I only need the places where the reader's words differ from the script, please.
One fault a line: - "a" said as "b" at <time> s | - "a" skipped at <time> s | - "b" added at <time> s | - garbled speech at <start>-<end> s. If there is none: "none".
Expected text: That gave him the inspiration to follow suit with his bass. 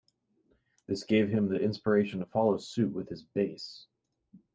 - "That" said as "This" at 0.9 s